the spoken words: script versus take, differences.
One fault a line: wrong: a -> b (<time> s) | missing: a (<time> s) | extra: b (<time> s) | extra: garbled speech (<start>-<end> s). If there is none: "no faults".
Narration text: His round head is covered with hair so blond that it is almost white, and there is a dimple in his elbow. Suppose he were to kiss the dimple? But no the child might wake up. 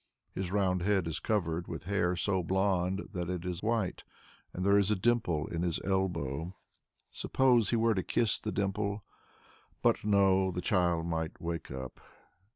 missing: almost (3.6 s)